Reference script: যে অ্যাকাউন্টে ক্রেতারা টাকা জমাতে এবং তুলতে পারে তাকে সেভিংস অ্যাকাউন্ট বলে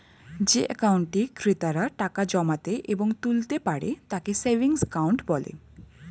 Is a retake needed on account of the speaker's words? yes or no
no